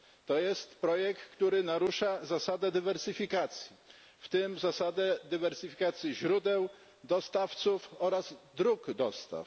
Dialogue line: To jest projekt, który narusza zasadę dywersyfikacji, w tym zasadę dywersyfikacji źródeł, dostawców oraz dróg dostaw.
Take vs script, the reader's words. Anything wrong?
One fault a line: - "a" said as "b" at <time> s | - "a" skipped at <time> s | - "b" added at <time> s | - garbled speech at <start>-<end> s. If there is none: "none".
none